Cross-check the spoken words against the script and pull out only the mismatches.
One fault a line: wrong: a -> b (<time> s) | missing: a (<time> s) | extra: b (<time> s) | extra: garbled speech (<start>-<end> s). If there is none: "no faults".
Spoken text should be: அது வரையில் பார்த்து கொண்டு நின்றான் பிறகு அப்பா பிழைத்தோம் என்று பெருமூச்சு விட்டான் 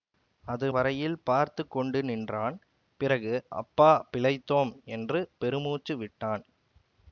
no faults